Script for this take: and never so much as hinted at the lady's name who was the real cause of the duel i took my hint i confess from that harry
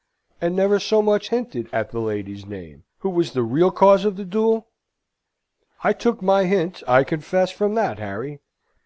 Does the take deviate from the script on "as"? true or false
true